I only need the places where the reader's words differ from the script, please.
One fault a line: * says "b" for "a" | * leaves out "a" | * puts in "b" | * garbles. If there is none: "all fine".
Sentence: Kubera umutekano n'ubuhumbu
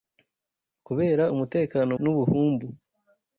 all fine